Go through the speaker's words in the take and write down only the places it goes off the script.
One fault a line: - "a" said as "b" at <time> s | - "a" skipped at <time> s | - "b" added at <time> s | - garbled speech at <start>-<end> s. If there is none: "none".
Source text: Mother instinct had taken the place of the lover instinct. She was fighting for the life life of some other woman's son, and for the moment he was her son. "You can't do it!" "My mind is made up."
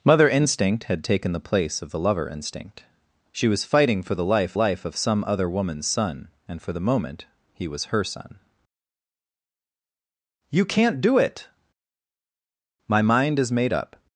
none